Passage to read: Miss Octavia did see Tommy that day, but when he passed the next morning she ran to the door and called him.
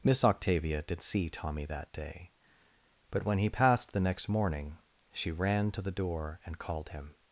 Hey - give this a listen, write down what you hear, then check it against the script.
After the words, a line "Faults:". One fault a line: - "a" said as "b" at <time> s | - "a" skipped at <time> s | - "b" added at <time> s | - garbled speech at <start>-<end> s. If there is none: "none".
Miss Octavia did see Tommy that day, but when he passed the next morning she ran to the door and called him.
Faults:
none